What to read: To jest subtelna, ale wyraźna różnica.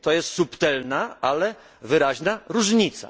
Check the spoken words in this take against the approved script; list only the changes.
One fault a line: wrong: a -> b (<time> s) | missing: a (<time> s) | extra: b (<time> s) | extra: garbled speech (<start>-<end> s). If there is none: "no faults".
no faults